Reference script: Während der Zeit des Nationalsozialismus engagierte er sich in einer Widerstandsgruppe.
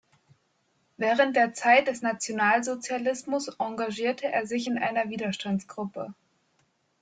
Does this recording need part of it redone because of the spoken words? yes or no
no